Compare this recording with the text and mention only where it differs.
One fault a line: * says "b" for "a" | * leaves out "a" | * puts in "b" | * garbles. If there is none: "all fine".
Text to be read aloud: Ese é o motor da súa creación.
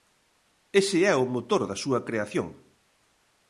all fine